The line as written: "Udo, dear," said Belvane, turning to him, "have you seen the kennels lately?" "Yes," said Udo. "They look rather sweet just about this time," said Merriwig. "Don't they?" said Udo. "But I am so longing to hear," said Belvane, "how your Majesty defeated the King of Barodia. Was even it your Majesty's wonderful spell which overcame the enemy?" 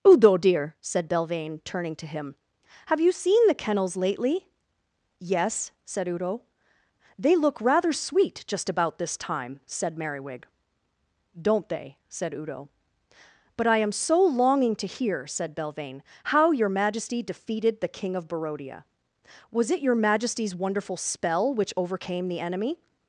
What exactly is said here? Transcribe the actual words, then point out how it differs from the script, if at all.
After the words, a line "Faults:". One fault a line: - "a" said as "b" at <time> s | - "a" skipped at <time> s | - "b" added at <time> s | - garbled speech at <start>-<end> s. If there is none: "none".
"Udo, dear," said Belvane, turning to him, "have you seen the kennels lately?" "Yes," said Udo. "They look rather sweet just about this time," said Merriwig. "Don't they?" said Udo. "But I am so longing to hear," said Belvane, "how your Majesty defeated the King of Barodia. Was it your Majesty's wonderful spell which overcame the enemy?"
Faults:
- "even" skipped at 19.7 s